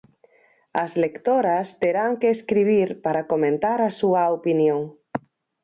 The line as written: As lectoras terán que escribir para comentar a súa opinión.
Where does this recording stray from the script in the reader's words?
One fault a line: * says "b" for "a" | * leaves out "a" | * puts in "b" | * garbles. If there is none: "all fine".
all fine